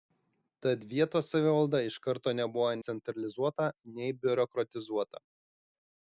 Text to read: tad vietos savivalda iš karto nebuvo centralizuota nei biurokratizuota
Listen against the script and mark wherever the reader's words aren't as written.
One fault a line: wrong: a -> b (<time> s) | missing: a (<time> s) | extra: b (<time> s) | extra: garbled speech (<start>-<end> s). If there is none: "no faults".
no faults